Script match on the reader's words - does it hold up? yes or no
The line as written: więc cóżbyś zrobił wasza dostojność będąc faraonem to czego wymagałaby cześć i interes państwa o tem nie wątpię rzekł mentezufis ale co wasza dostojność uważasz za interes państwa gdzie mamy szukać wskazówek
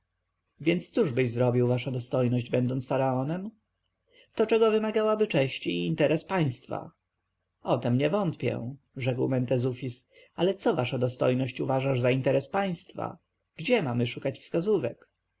yes